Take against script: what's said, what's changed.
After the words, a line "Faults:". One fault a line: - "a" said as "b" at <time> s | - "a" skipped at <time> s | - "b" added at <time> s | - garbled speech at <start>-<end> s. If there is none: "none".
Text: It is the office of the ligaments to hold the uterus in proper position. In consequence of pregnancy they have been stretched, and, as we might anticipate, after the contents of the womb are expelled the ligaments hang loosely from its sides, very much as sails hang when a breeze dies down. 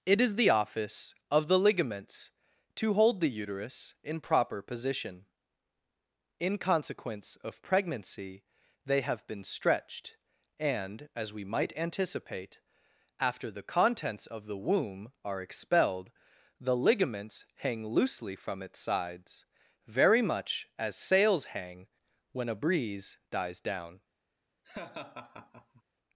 It is the office of the ligaments to hold the uterus in proper position. In consequence of pregnancy they have been stretched, and, as we might anticipate, after the contents of the womb are expelled the ligaments hang loosely from its sides, very much as sails hang when a breeze dies down.
Faults:
none